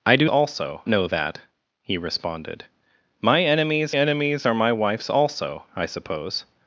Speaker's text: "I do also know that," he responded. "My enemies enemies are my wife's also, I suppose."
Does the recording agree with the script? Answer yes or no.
yes